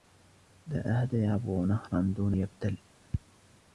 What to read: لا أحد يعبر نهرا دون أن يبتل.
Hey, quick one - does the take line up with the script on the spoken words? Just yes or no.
no